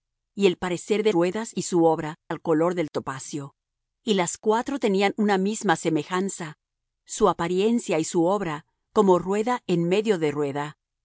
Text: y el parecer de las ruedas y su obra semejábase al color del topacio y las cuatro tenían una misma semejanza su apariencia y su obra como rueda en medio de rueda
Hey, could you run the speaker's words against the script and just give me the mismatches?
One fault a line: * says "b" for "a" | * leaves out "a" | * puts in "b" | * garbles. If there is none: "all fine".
* leaves out "las"
* leaves out "semejábase"